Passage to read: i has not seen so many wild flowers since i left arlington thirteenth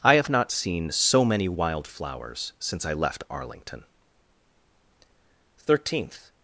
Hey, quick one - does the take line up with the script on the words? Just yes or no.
no